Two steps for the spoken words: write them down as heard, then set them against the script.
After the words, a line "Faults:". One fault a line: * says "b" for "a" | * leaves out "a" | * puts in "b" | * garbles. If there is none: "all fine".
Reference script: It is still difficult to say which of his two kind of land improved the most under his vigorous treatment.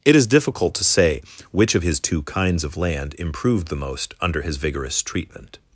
It is difficult to say which of his two kinds of land improved the most under his vigorous treatment.
Faults:
* leaves out "still"
* says "kinds" for "kind"